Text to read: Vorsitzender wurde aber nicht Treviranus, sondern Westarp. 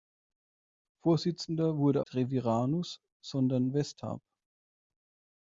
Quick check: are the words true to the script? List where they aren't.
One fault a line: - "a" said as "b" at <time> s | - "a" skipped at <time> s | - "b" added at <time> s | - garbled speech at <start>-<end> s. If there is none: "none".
- "aber nicht" skipped at 2.0 s